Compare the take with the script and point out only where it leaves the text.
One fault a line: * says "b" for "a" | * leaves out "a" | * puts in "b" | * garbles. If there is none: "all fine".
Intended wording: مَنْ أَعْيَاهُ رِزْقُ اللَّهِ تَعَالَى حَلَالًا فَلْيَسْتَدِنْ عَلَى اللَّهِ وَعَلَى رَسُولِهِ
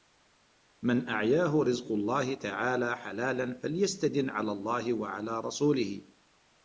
all fine